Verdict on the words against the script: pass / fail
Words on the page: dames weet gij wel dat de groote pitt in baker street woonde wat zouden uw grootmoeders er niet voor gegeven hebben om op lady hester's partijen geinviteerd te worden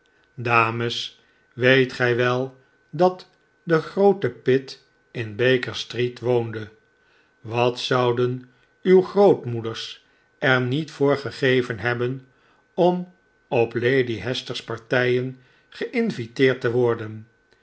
pass